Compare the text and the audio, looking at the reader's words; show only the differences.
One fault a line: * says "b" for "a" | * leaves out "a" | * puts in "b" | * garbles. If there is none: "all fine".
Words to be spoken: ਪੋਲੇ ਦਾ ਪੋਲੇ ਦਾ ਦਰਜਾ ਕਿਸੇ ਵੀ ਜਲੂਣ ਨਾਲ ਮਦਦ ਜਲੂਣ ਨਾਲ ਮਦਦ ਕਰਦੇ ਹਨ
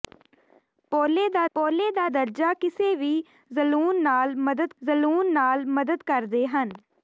all fine